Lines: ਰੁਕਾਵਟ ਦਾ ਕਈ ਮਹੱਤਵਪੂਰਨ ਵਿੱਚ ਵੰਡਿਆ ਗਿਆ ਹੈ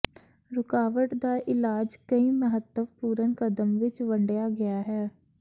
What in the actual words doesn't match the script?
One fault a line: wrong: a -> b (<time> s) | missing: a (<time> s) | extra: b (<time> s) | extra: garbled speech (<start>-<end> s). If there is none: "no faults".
extra: ਇਲਾਜ (1.5 s)
extra: ਕਦਮ (3.4 s)